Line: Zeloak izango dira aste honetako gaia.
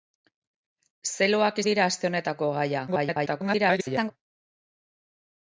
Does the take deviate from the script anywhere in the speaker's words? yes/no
yes